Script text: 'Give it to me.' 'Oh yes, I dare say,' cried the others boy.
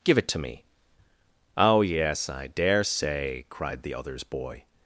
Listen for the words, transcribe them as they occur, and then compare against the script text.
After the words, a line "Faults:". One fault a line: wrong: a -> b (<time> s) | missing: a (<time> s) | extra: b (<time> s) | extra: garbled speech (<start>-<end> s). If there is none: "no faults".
'Give it to me.' 'Oh yes, I dare say,' cried the others boy.
Faults:
no faults